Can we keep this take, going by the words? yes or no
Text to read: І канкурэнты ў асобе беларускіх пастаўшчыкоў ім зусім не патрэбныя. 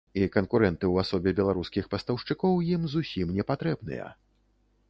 yes